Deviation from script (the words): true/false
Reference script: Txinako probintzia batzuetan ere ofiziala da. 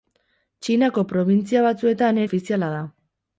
true